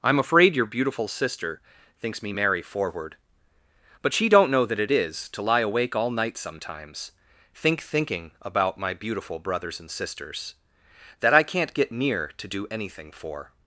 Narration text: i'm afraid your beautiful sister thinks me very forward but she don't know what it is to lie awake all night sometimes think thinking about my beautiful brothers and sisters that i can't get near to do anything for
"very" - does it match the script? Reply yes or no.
no